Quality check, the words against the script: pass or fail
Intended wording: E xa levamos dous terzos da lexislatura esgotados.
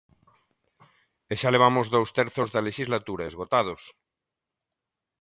pass